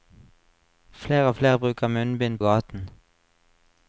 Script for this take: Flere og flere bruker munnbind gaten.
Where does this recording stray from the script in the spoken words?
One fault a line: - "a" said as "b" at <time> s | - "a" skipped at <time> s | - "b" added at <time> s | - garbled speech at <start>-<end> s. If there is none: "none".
none